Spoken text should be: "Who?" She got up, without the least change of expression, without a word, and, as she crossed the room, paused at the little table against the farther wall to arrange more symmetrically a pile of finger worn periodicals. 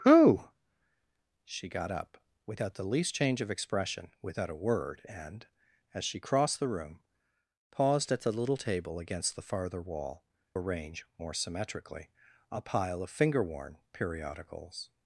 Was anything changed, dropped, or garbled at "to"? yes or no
yes